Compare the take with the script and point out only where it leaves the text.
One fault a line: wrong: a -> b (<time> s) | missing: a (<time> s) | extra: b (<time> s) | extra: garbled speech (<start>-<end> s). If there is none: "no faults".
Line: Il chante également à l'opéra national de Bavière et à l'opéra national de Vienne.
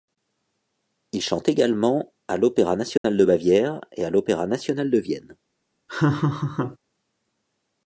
no faults